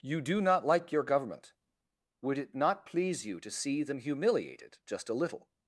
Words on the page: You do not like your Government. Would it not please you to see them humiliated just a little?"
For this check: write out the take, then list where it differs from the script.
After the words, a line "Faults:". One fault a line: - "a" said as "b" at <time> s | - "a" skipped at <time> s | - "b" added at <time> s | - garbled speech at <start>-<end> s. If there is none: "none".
You do not like your Government. Would it not please you to see them humiliated just a little?"
Faults:
none